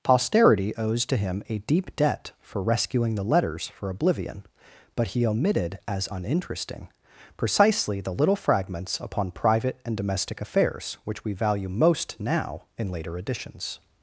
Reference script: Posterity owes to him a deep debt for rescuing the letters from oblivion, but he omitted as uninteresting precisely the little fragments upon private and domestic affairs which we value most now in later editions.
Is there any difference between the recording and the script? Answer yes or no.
yes